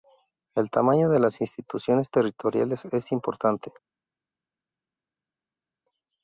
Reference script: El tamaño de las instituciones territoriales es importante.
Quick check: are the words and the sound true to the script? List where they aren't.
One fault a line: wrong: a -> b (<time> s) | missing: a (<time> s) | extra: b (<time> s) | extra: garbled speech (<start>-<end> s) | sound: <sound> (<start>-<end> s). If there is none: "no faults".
no faults